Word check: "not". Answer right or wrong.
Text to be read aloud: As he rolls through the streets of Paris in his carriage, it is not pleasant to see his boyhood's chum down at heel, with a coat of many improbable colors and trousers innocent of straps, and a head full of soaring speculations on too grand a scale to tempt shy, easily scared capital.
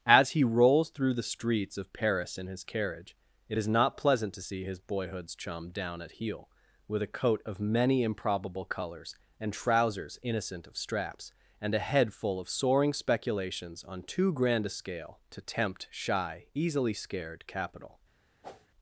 right